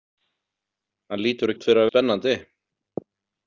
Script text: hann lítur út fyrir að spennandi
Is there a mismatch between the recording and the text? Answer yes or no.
no